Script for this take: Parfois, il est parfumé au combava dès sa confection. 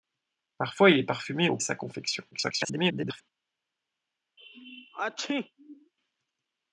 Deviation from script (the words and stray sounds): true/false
true